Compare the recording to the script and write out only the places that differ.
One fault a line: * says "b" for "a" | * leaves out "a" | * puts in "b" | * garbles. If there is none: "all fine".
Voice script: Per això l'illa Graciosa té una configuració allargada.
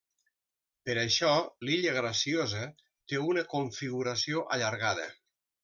all fine